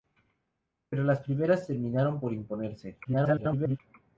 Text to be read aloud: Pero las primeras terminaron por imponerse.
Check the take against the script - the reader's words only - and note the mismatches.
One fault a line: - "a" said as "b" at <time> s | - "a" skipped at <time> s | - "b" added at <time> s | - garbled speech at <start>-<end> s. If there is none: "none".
- garbled speech at 3.0-3.8 s